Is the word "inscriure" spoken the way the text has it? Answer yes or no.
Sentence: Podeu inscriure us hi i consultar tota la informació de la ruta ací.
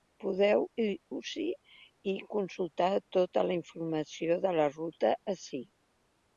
no